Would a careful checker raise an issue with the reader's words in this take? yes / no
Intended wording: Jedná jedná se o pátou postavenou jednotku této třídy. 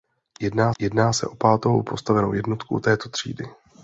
no